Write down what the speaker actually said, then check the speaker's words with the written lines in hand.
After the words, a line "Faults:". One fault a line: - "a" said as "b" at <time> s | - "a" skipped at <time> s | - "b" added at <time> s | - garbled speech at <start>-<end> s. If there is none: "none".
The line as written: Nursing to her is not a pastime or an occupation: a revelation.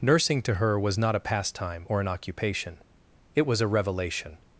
Nursing to her was not a pastime or an occupation: it was a revelation.
Faults:
- "is" said as "was" at 0.8 s
- "it was" added at 3.3 s